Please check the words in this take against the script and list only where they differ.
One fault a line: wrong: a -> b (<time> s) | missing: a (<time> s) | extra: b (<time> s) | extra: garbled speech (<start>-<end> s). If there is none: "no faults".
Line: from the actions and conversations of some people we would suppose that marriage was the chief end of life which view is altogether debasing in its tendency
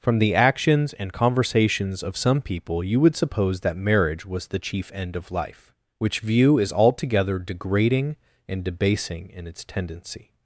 wrong: we -> you (2.8 s)
extra: degrading and (7.4 s)